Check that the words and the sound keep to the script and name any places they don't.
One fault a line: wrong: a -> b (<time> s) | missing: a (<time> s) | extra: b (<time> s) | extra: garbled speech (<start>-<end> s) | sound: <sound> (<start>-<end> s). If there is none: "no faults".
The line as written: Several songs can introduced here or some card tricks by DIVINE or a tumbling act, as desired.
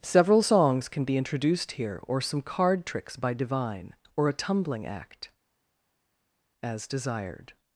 extra: be (1.0 s)